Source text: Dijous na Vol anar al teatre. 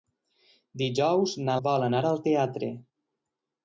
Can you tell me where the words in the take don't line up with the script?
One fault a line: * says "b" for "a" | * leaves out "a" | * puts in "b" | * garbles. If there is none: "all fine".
all fine